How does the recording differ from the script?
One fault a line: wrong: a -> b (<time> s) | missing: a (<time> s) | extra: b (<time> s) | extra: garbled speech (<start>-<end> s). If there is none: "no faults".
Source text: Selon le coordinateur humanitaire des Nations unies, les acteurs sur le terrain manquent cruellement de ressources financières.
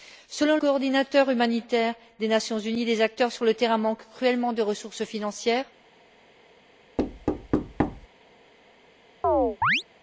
missing: le (0.6 s)